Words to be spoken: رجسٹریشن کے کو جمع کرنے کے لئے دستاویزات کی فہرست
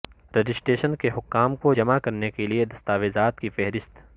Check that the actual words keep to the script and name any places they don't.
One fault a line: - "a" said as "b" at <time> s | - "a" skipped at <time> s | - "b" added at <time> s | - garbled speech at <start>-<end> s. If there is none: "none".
- "حکام" added at 1.1 s